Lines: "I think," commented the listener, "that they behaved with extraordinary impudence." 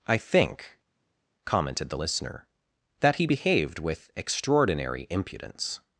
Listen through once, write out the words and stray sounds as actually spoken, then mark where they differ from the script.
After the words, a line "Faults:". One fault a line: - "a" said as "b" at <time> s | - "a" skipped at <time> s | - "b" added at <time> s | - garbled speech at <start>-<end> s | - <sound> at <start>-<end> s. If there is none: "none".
"I think," commented the listener, "that he behaved with extraordinary impudence."
Faults:
- "they" said as "he" at 3.1 s